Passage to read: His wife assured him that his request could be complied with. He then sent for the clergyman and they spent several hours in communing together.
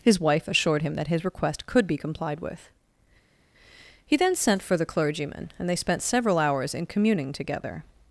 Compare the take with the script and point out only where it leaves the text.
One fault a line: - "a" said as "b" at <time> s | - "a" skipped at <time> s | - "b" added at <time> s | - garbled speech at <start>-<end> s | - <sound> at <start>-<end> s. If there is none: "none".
none